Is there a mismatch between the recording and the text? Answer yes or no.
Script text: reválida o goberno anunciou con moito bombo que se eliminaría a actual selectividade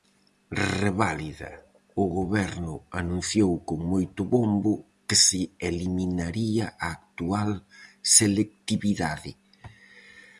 no